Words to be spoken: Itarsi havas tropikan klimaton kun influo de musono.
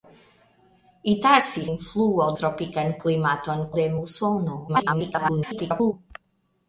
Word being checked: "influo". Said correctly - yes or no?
no